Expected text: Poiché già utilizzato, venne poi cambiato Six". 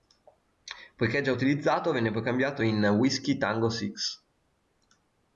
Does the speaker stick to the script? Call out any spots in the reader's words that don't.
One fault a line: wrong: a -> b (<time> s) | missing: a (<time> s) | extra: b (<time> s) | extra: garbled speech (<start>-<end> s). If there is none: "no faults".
extra: in Whiskey Tango (2.6 s)